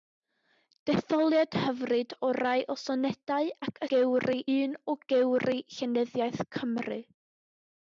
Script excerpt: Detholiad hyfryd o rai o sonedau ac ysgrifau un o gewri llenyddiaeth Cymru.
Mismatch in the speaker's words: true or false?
true